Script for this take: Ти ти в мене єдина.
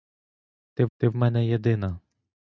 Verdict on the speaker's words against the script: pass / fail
pass